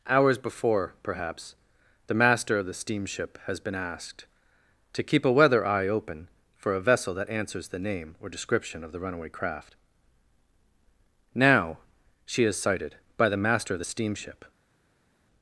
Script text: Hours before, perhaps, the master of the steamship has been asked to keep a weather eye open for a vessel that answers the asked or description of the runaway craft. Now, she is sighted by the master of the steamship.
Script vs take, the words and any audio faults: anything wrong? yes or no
yes